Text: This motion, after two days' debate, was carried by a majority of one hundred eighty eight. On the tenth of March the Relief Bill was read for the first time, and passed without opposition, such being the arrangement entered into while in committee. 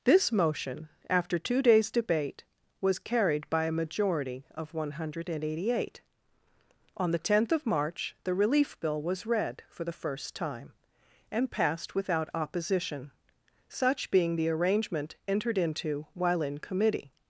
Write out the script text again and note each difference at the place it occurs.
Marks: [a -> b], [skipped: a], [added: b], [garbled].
This motion, after two days' debate, was carried by a majority of one hundred eighty eight. On the tenth of March the Relief Bill was read for the first time, and passed without opposition, such being the arrangement entered into while in committee.